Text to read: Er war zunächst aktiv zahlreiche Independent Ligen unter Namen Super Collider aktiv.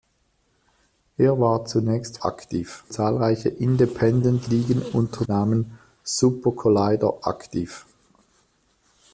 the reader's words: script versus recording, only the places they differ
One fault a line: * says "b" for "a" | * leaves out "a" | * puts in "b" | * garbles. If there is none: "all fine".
all fine